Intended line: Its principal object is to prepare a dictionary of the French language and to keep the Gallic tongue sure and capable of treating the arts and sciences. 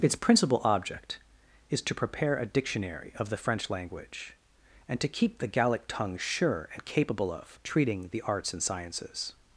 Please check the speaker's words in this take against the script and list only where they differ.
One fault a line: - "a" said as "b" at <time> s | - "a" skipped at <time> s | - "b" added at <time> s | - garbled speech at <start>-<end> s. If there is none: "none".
none